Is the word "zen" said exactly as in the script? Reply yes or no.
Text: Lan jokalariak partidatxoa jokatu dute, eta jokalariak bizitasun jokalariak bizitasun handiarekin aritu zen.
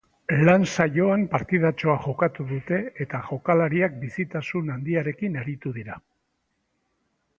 no